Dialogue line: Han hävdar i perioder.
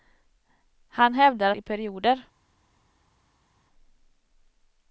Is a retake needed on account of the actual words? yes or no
no